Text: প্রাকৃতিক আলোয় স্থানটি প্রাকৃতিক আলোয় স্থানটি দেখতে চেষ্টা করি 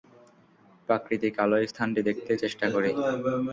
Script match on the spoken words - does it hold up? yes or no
no